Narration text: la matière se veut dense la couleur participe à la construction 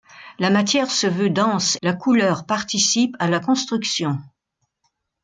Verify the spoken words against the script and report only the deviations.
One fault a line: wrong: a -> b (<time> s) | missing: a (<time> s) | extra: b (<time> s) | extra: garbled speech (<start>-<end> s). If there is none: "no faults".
no faults